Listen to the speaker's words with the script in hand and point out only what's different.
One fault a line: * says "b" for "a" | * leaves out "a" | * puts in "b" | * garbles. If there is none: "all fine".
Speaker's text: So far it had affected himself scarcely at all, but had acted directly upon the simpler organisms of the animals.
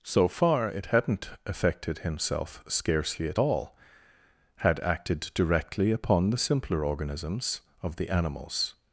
* says "hadn't" for "had"
* leaves out "but"